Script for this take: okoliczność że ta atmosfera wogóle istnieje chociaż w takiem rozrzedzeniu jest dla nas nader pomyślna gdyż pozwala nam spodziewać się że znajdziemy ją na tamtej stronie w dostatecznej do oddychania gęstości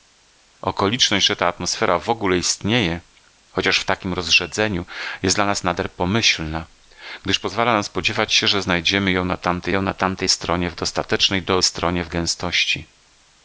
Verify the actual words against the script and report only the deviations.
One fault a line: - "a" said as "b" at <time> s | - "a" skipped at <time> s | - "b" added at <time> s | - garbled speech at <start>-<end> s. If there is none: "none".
- "ją na tamtej" added at 9.7 s
- "oddychania" said as "stronie" at 11.6 s